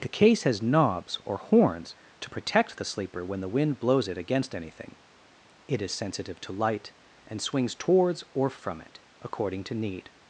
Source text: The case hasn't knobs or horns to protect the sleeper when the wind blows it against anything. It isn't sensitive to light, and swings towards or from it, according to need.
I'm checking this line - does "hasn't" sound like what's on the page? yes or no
no